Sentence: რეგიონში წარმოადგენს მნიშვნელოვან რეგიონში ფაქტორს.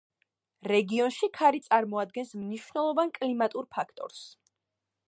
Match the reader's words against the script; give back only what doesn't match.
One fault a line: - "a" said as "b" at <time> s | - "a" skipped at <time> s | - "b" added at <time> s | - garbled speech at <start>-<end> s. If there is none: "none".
- "ქარი" added at 1.4 s
- "რეგიონში" said as "კლიმატურ" at 3.2 s